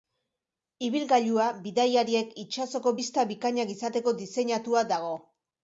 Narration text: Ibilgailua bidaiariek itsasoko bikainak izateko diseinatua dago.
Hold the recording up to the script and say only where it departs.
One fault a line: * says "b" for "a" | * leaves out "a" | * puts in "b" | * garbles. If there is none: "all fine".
* puts in "bista"